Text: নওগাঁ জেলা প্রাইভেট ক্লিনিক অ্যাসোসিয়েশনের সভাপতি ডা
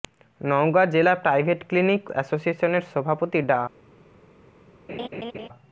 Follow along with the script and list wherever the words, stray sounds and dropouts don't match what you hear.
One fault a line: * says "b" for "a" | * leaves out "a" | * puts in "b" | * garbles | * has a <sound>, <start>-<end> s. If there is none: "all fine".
* has a laugh, 4.9-5.5 s